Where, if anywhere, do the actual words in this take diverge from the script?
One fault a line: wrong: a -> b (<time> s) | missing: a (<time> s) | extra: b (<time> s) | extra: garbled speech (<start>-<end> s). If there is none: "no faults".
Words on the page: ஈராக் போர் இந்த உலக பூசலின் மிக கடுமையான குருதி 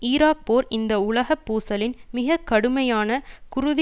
no faults